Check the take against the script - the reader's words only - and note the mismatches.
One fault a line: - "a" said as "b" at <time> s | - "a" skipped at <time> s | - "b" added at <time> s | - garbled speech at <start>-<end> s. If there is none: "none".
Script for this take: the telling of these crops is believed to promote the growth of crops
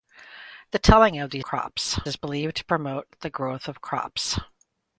none